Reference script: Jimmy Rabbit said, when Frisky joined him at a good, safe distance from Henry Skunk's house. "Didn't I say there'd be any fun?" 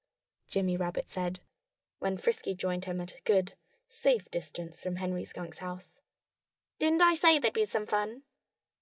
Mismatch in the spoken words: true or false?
true